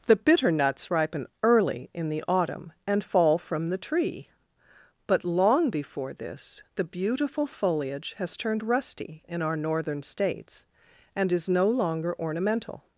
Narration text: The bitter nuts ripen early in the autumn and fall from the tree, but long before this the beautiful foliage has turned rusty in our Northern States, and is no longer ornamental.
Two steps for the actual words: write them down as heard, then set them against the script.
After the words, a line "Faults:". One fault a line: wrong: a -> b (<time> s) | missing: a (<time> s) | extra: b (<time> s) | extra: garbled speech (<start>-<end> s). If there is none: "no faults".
The bitter nuts ripen early in the autumn and fall from the tree, but long before this the beautiful foliage has turned rusty in our Northern States, and is no longer ornamental.
Faults:
no faults